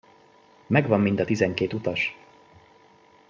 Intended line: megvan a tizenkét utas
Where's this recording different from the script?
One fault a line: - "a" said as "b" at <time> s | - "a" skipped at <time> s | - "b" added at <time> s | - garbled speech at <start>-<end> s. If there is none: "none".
- "mind" added at 1.0 s